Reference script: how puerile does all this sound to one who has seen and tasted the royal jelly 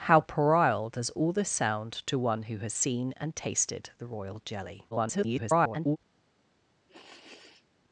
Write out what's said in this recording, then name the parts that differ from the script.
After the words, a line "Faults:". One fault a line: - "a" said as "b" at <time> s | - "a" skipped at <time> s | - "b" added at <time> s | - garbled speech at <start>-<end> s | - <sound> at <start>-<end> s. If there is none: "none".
how puerile does all this sound to one who has seen and tasted the royal jelly [garbled]
Faults:
- garbled speech at 4.9-6.0 s
- sniff at 6.9-7.7 s